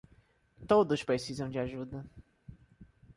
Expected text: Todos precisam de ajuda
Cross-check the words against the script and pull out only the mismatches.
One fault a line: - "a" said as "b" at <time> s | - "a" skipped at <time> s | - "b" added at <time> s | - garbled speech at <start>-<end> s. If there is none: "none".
none